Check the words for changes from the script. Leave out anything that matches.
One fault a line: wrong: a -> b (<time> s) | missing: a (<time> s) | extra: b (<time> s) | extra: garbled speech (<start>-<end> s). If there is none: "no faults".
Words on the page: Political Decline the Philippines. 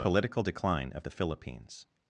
extra: of (0.9 s)